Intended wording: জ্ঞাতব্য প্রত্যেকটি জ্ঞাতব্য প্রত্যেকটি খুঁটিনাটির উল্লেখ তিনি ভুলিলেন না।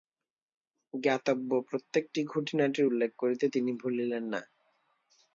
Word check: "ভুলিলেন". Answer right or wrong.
right